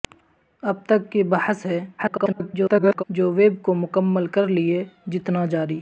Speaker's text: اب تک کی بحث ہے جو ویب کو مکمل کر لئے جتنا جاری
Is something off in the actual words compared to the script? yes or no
yes